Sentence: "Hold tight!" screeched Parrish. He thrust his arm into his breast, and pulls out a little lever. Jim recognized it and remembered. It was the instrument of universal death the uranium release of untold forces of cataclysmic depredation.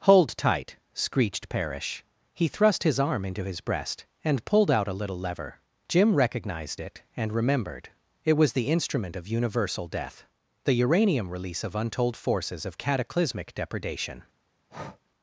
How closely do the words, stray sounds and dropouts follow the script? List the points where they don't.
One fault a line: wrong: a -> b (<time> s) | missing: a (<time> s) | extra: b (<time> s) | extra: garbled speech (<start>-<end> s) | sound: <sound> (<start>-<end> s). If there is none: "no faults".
wrong: pulls -> pulled (4.5 s)
sound: breath (14.7-15.0 s)